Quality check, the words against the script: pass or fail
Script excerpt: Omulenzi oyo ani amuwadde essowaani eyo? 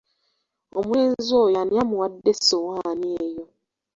pass